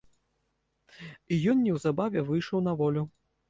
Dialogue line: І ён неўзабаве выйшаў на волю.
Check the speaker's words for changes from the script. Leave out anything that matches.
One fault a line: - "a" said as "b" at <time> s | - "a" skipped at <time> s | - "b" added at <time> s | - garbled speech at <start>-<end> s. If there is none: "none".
none